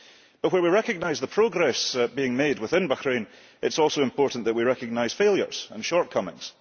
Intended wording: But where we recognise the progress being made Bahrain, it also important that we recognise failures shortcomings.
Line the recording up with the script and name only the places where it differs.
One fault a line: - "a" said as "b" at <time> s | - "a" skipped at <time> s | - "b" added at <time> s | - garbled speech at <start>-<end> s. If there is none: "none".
- "within" added at 2.6 s
- "is" added at 3.7 s
- "and" added at 5.7 s